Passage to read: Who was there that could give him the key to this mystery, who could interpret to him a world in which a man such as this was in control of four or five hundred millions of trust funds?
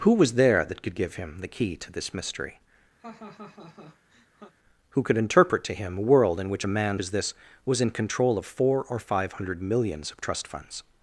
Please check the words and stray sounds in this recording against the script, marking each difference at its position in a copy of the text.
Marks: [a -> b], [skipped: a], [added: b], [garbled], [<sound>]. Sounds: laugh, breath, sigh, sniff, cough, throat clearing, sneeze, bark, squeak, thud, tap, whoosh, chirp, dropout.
Who was there that could give him the key to this mystery, [laugh] who could interpret to him a world in which a man [skipped: such] as this was in control of four or five hundred millions of trust funds?